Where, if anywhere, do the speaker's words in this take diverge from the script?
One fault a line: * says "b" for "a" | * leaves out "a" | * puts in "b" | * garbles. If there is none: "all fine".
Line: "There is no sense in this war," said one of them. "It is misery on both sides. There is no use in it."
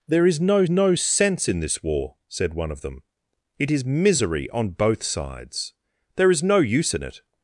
* puts in "no"